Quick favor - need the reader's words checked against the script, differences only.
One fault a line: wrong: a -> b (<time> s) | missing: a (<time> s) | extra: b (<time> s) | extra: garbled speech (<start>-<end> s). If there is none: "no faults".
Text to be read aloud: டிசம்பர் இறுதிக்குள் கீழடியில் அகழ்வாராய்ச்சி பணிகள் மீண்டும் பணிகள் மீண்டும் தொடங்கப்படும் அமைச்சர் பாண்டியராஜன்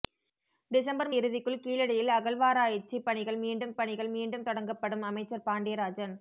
no faults